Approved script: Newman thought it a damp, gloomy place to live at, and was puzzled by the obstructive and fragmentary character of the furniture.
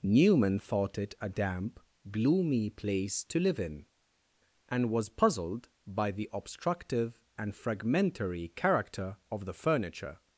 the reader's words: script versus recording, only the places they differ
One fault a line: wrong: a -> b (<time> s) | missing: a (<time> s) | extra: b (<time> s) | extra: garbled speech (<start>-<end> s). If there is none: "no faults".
wrong: at -> in (3.6 s)